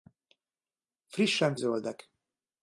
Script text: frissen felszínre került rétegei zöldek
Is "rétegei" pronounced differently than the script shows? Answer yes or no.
yes